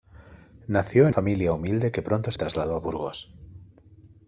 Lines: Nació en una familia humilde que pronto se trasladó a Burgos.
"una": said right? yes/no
no